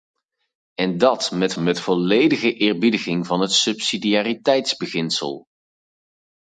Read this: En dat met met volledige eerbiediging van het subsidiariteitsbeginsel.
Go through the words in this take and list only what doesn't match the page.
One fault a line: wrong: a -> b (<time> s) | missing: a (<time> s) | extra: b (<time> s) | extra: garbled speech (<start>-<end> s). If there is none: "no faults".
no faults